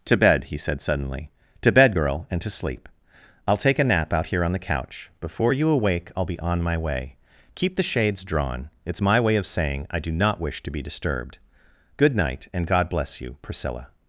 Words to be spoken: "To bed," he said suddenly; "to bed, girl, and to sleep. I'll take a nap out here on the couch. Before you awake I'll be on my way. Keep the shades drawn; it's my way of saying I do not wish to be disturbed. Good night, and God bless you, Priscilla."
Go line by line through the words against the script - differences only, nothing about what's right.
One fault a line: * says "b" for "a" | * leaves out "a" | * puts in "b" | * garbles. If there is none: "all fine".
all fine